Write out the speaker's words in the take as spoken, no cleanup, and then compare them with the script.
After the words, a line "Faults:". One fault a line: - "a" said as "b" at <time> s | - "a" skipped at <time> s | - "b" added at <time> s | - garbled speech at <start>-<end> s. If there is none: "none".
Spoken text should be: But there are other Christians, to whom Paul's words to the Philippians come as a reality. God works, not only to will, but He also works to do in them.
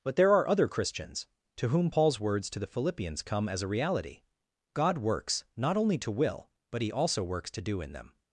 But there are other Christians, to whom Paul's words to the Philippians come as a reality. God works, not only to will, but He also works to do in them.
Faults:
none